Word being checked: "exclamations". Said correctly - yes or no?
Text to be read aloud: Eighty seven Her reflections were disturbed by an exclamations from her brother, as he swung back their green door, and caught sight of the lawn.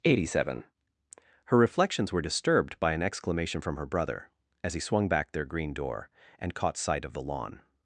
no